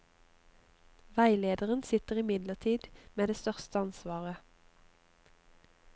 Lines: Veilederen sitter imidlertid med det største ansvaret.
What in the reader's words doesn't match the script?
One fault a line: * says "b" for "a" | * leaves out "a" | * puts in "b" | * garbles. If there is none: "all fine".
all fine